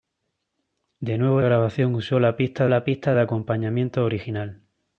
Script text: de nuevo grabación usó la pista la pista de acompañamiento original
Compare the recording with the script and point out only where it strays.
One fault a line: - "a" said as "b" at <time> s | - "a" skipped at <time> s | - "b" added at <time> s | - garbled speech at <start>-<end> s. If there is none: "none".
none